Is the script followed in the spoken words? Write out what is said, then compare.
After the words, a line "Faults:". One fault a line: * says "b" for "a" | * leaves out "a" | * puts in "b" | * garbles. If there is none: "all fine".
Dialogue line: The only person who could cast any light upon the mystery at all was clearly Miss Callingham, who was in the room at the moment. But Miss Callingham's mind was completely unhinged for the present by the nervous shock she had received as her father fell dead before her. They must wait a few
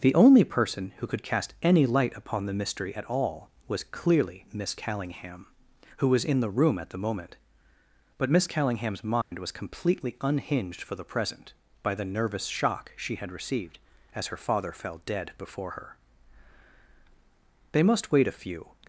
The only person who could cast any light upon the mystery at all was clearly Miss Callingham, who was in the room at the moment. But Miss Callingham's mind was completely unhinged for the present by the nervous shock she had received as her father fell dead before her. They must wait a few
Faults:
all fine